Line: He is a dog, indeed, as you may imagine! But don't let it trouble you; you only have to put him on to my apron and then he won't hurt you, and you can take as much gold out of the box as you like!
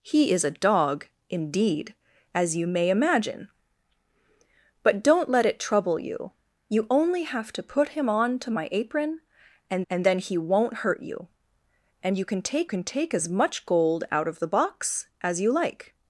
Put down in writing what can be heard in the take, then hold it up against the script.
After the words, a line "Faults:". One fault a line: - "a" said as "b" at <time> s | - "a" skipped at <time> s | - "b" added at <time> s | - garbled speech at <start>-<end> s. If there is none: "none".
He is a dog, indeed, as you may imagine! But don't let it trouble you; you only have to put him on to my apron and and then he won't hurt you, and you can take can take as much gold out of the box as you like!
Faults:
- "and" added at 9.9 s
- "can take" added at 12.7 s